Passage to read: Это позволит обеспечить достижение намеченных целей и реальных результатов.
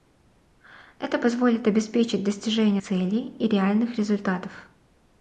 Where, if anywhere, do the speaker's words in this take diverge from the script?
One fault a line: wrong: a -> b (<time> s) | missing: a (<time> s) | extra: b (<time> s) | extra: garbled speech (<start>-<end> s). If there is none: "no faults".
missing: намеченных (2.8 s)